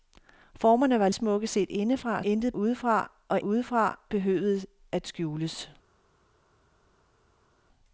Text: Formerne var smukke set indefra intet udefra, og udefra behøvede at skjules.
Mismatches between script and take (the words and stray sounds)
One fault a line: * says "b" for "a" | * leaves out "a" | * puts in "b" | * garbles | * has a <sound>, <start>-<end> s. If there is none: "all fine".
all fine